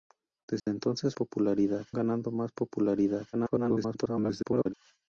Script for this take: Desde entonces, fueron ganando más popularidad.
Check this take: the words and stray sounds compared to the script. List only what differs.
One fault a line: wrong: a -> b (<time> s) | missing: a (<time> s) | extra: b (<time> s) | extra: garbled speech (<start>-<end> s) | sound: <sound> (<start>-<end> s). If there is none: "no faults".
sound: dropout (0.6-0.7 s)
wrong: fueron -> popularidad (1.1 s)
extra: garbled speech (3.3-4.7 s)